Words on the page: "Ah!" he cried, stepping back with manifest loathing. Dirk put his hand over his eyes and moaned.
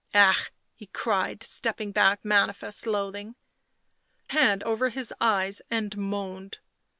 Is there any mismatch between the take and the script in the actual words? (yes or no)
yes